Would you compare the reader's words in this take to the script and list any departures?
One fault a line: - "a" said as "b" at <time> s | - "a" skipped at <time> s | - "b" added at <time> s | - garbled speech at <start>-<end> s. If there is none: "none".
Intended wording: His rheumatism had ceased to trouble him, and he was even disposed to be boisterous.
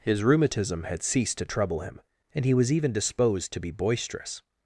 none